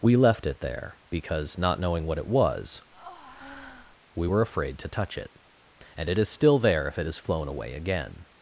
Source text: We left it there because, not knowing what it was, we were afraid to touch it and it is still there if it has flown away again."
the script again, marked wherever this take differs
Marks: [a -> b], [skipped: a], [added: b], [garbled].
We left it there because, not knowing what it was, we were afraid to touch it and it is still there if it has flown away again."